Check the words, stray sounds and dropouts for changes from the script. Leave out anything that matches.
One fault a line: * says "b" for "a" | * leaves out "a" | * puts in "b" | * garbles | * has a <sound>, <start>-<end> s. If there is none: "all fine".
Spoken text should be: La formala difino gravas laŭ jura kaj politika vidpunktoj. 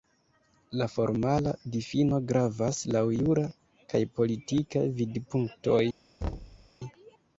* has a thud, 6.2-6.7 s